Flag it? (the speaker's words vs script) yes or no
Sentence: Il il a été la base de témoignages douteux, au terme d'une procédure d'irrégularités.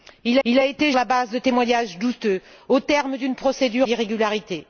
no